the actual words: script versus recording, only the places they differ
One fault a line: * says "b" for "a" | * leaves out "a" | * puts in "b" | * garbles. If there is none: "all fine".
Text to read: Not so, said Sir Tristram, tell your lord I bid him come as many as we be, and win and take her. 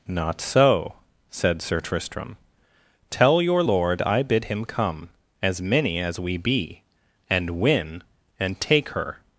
all fine